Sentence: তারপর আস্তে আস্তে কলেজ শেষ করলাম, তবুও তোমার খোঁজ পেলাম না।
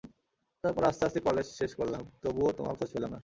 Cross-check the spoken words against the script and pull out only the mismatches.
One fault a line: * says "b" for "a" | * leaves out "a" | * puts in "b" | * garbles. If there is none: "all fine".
all fine